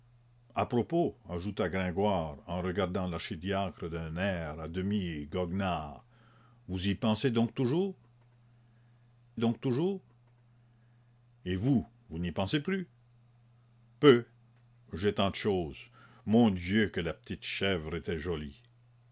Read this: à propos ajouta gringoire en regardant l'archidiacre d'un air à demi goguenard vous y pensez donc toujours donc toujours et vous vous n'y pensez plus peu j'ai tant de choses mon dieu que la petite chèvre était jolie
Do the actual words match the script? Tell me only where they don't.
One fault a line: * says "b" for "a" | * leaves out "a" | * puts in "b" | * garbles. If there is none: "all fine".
all fine